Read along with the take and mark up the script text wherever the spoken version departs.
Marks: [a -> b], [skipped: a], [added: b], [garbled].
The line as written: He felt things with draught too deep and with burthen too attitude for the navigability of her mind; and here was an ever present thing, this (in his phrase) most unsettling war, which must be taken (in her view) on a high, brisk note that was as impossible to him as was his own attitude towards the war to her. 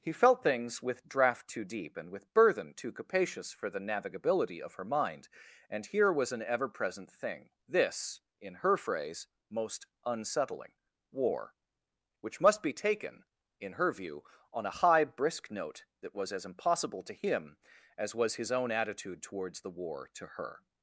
He felt things with draught too deep and with burthen too [attitude -> capacious] for the navigability of her mind; and here was an ever present thing, this (in [his -> her] phrase) most unsettling war, which must be taken (in her view) on a high, brisk note that was as impossible to him as was his own attitude towards the war to her.